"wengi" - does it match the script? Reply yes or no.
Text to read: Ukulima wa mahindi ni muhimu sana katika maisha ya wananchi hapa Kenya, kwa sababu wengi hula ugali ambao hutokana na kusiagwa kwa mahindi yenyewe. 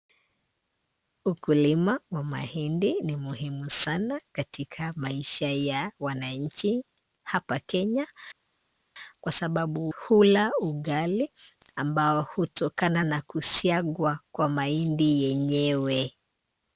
no